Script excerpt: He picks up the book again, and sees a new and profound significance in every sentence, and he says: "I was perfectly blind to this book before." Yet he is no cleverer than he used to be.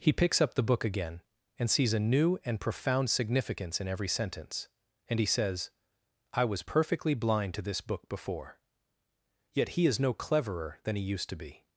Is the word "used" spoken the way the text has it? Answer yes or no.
yes